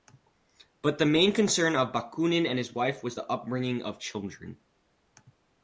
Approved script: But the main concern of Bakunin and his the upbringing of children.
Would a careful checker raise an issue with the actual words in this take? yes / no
yes